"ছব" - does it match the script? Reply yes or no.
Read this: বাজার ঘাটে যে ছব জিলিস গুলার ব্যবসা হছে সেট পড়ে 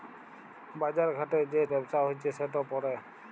no